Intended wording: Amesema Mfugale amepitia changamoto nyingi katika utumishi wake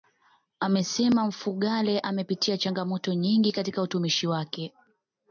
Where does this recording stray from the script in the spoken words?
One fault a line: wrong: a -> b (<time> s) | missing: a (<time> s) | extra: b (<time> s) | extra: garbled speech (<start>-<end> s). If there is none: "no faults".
no faults